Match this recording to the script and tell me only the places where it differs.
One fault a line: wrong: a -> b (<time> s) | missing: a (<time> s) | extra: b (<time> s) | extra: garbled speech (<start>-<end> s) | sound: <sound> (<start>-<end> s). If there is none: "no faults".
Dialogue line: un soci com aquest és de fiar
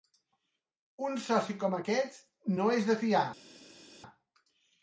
extra: no (2.6 s)